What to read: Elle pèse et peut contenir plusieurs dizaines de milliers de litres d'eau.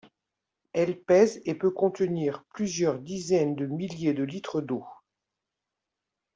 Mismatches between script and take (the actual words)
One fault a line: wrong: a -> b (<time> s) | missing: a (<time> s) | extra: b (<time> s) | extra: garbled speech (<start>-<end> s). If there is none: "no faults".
no faults